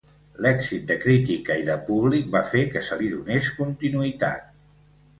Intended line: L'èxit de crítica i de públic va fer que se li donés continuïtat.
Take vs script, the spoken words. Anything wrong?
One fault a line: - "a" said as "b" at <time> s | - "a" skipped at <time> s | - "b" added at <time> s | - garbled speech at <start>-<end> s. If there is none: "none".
none